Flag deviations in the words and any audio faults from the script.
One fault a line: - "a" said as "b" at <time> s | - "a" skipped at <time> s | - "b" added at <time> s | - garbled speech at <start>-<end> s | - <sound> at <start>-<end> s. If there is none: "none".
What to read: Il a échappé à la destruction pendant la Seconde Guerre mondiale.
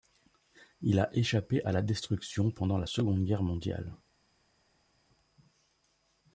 none